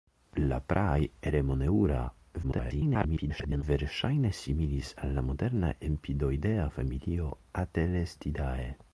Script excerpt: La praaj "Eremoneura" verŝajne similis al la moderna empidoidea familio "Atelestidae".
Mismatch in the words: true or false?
true